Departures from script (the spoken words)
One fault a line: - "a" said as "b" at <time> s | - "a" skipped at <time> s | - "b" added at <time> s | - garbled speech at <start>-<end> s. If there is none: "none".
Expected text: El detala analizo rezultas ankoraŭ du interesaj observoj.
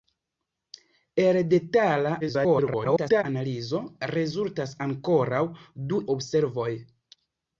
- garbled speech at 2.2-3.2 s
- "interesaj" skipped at 6.0 s